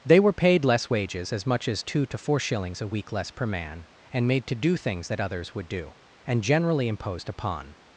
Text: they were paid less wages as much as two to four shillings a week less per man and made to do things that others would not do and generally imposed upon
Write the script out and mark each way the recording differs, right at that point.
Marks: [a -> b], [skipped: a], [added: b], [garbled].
they were paid less wages as much as two to four shillings a week less per man and made to do things that others would [skipped: not] do and generally imposed upon